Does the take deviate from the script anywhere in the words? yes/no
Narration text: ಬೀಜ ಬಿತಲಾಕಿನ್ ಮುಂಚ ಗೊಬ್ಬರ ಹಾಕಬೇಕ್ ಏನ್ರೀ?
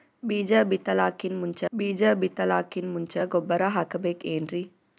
yes